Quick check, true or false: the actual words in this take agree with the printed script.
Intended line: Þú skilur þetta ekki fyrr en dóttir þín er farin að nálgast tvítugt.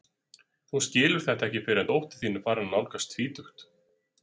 true